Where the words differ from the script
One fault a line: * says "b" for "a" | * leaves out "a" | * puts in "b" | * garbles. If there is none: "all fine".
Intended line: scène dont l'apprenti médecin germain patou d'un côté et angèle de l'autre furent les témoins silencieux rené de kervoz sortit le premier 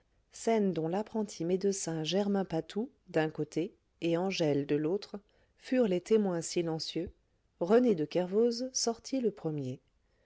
all fine